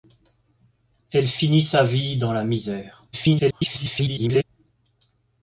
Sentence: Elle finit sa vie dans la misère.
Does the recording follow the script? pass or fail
fail